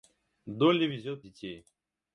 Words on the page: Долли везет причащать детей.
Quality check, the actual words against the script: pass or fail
fail